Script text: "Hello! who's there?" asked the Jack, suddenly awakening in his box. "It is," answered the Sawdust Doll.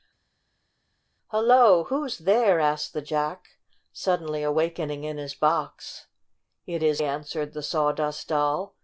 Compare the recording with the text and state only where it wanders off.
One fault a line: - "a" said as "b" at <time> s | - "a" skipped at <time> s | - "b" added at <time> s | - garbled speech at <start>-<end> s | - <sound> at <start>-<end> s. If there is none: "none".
none